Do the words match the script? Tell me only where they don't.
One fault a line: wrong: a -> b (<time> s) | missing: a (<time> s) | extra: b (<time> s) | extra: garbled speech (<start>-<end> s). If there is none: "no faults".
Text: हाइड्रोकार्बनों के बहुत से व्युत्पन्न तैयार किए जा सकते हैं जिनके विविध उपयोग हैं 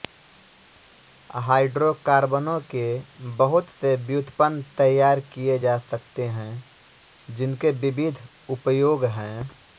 no faults